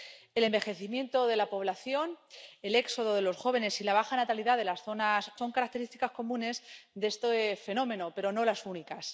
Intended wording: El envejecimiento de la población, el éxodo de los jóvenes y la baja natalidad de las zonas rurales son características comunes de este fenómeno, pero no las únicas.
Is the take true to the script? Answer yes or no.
no